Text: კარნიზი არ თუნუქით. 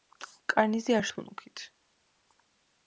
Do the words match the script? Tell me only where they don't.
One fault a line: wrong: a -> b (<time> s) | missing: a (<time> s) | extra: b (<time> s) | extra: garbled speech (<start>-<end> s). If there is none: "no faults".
no faults